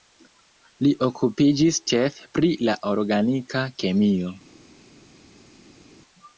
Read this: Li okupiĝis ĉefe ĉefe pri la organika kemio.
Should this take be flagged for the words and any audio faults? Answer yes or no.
yes